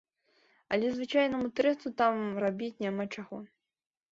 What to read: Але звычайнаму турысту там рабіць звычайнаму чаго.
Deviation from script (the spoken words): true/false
true